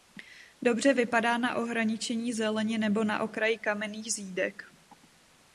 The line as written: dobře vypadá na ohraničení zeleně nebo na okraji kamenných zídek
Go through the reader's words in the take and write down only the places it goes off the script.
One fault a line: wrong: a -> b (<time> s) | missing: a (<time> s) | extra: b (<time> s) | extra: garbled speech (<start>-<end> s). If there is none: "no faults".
no faults